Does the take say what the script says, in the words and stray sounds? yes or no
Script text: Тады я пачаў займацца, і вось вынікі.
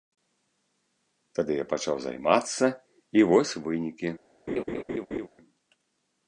no